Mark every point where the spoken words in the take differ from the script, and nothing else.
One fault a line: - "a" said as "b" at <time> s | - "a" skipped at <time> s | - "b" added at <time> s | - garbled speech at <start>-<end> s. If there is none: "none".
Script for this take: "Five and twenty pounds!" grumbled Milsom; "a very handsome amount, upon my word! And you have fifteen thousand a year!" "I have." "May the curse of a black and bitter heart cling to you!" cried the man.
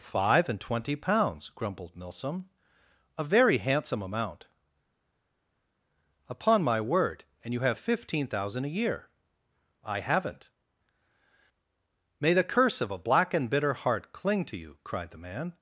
- "have" said as "haven't" at 10.0 s